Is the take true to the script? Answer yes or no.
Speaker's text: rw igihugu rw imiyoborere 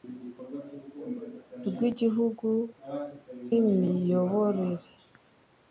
no